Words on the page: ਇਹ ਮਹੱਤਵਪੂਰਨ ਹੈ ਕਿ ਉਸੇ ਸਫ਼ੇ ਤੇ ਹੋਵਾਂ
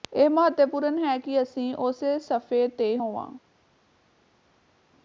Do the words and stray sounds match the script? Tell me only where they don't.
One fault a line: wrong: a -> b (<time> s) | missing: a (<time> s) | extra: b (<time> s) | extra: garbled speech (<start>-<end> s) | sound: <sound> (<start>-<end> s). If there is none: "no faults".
extra: ਅਸੀਂ (1.4 s)